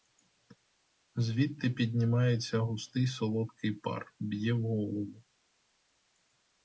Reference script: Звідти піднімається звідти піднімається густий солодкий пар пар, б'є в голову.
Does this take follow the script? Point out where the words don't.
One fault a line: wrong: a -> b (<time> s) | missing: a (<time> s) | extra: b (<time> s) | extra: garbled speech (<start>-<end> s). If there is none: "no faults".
missing: звідти піднімається (2.6 s)
missing: пар (4.1 s)